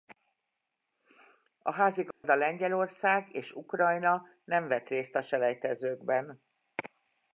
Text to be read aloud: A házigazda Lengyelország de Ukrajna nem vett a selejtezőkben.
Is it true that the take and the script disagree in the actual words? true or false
true